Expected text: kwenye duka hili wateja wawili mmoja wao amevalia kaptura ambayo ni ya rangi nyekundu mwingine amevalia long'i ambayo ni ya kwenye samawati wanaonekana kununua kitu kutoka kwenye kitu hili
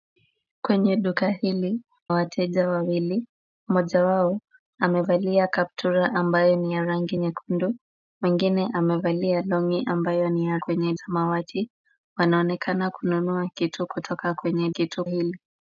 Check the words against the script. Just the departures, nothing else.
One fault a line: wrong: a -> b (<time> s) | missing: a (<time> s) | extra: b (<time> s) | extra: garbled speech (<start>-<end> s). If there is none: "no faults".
no faults